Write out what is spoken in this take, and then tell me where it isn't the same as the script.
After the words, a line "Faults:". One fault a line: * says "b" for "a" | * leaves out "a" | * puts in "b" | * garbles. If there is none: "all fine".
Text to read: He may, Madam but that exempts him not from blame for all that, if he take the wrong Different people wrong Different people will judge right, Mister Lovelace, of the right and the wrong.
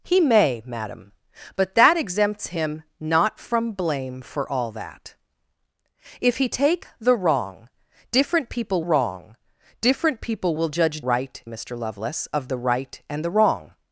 He may, Madam but that exempts him not from blame for all that, if he take the wrong Different people wrong Different people will judge right, Mister Lovelace, of the right and the wrong.
Faults:
all fine